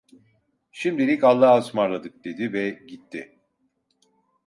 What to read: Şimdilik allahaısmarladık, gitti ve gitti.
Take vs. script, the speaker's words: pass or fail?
fail